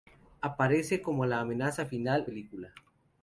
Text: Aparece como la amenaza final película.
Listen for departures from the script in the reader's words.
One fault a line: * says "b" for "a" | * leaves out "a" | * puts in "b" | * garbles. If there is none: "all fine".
all fine